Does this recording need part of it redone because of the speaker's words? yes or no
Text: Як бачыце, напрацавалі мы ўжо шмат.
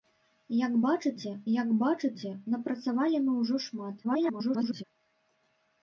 yes